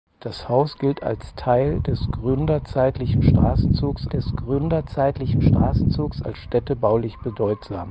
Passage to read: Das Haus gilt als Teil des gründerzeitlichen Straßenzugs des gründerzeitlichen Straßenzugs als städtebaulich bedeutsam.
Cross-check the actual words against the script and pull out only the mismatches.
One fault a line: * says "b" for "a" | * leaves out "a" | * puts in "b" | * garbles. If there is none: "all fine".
all fine